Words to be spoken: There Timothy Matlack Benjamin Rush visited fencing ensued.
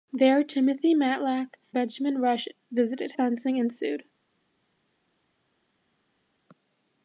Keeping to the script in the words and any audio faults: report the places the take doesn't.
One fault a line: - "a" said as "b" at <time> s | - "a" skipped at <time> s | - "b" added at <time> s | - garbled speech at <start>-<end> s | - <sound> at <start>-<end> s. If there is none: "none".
none